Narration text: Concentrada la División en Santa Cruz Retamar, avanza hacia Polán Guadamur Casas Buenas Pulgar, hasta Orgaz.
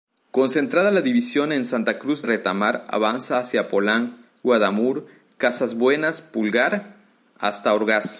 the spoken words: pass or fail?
pass